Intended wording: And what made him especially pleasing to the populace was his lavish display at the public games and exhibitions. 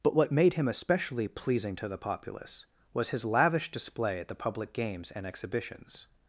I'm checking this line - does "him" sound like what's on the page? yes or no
yes